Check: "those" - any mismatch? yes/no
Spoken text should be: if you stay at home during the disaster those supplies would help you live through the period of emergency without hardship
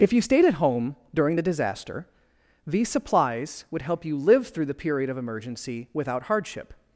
yes